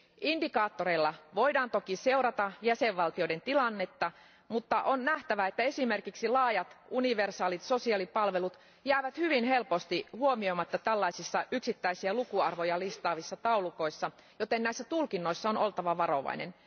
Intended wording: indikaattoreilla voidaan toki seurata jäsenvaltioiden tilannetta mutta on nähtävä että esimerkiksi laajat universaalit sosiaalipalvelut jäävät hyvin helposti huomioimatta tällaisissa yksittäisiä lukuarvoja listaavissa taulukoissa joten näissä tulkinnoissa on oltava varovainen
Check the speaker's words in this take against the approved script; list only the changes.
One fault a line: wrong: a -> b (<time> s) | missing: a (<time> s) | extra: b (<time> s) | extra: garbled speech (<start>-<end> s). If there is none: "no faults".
no faults